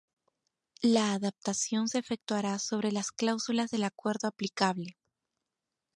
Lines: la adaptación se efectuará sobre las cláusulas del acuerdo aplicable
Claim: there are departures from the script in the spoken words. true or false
false